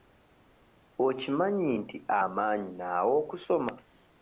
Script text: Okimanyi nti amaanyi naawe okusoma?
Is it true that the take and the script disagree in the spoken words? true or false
false